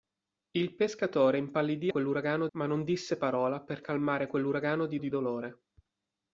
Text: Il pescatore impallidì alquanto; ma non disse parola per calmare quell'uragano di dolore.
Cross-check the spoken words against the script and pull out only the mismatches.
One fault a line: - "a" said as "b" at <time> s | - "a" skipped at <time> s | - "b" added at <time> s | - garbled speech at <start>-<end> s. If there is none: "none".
- "alquanto" said as "quell'uragano" at 1.9 s
- "di" added at 5.0 s